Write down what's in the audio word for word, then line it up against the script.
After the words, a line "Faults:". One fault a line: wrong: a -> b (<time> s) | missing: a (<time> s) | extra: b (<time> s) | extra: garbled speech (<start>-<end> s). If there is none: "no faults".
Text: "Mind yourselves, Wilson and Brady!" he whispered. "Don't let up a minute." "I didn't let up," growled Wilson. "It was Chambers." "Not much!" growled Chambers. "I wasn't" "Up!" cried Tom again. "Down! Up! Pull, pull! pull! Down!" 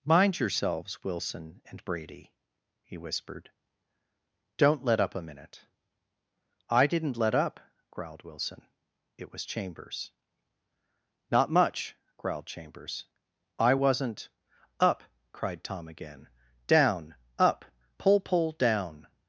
"Mind yourselves, Wilson and Brady!" he whispered. "Don't let up a minute." "I didn't let up," growled Wilson. "It was Chambers." "Not much!" growled Chambers. "I wasn't" "Up!" cried Tom again. "Down! Up! Pull, pull! Down!"
Faults:
missing: pull (18.5 s)